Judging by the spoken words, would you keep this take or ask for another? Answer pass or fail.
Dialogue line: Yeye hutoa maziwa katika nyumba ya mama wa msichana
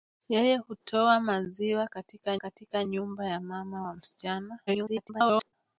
fail